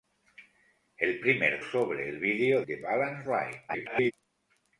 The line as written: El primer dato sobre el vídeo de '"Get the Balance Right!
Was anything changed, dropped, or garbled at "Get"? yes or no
yes